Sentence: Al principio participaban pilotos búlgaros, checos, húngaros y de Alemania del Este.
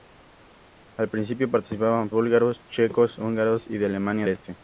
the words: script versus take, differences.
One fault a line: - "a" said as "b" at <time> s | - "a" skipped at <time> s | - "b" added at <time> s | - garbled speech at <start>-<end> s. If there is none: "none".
- "pilotos" skipped at 2.1 s
- "del" skipped at 4.3 s